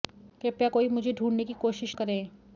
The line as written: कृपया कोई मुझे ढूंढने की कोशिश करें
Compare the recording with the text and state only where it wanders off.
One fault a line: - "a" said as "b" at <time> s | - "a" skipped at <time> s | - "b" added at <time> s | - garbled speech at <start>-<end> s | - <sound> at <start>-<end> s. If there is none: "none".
none